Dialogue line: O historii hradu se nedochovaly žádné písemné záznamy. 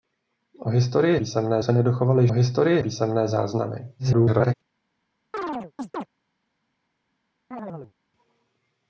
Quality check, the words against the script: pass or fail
fail